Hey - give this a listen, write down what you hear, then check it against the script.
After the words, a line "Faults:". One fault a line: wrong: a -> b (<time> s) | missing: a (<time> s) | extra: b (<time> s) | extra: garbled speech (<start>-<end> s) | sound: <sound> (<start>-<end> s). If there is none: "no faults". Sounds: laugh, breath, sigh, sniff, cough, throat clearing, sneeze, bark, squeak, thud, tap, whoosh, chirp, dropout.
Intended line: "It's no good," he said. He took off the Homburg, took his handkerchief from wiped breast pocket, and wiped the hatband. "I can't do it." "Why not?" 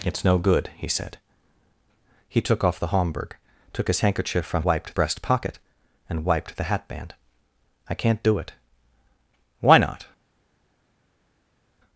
"It's no good," he said. He took off the Homburg, took his handkerchief from wiped breast pocket, and wiped the hatband. "I can't do it." "Why not?"
Faults:
no faults